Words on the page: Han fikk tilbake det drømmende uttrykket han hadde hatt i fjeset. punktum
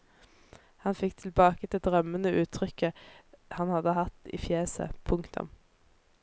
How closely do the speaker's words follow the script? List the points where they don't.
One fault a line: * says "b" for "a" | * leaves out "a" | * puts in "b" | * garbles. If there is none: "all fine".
all fine